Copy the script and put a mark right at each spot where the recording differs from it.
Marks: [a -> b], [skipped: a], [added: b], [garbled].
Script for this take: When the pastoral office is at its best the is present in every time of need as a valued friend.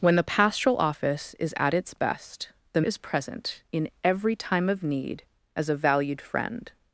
When the pastoral office is at its best the is present in every time of need as a valued friend.